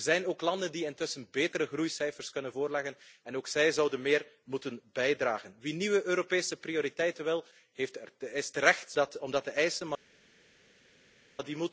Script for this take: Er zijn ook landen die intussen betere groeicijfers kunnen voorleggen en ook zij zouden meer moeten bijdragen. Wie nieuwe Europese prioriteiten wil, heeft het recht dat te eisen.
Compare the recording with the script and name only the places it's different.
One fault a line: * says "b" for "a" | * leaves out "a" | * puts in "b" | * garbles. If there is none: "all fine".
all fine